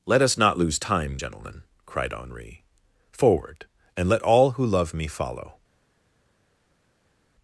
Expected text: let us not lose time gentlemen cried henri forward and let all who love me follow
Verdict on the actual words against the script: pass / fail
pass